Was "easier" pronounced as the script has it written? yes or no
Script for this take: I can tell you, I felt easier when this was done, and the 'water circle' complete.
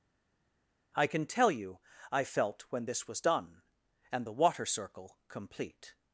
no